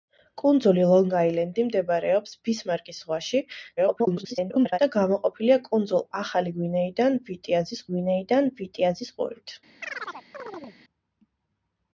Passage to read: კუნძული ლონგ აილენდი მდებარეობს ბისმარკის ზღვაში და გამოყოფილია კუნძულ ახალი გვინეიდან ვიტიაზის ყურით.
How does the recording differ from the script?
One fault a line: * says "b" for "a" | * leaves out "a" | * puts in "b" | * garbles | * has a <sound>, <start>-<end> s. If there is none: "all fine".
* garbles
* puts in "გვინეიდან ვიტიაზის"
* has a chirp, 9.8-10.8 s